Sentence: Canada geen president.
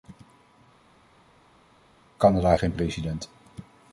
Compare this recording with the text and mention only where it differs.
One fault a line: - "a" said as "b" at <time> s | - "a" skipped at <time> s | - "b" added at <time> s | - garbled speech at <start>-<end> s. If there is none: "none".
none